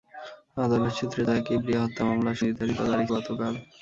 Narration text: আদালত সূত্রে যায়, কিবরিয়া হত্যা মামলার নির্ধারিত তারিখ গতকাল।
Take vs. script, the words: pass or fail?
pass